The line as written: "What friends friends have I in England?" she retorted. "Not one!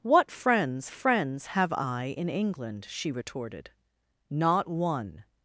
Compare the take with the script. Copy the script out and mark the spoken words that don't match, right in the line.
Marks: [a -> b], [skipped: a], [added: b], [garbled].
"What friends friends have I in England?" she retorted. "Not one!